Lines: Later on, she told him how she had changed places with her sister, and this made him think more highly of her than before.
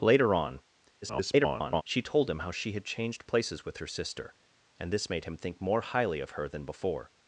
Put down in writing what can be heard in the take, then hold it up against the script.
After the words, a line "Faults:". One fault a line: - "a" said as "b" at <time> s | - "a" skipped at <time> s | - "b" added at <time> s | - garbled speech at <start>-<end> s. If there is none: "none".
Later on, [garbled] she told him how she had changed places with her sister, and this made him think more highly of her than before.
Faults:
- garbled speech at 1.0-1.8 s